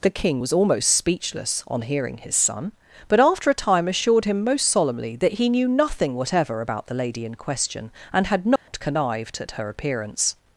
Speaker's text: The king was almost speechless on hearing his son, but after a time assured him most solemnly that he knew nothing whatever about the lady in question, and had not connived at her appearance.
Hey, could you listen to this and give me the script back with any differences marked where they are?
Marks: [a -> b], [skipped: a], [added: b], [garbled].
The king was almost speechless on hearing his son, but after a time assured him most solemnly that he knew nothing whatever about the lady in question, and had not connived at her appearance.